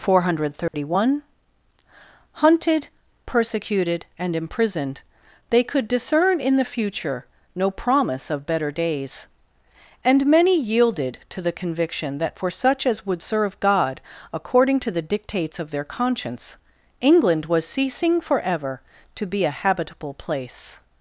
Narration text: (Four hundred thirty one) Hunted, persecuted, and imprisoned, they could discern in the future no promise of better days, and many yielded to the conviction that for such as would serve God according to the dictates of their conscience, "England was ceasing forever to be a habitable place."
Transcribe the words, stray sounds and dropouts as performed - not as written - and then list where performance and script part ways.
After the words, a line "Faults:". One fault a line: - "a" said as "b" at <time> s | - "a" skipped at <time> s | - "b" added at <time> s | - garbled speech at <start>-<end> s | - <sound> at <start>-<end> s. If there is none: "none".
(Four hundred thirty one) Hunted, persecuted, and imprisoned, they could discern in the future no promise of better days, and many yielded to the conviction that for such as would serve God according to the dictates of their conscience, "England was ceasing forever to be a habitable place."
Faults:
- dropout at 0.7-0.7 s